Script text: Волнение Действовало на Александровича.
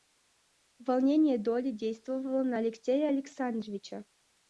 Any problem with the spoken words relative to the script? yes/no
yes